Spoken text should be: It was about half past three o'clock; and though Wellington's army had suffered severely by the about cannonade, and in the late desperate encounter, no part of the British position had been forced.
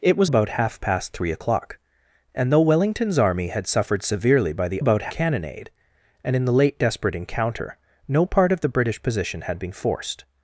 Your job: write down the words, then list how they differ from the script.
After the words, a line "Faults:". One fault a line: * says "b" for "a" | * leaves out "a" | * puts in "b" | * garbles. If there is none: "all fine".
It was about half past three o'clock; and though Wellington's army had suffered severely by the about cannonade, and in the late desperate encounter, no part of the British position had been forced.
Faults:
all fine